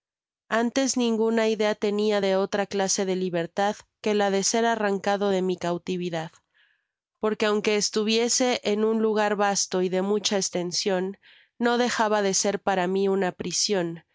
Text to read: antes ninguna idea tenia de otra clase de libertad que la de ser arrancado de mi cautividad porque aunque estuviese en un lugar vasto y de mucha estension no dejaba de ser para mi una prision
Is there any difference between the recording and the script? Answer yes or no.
no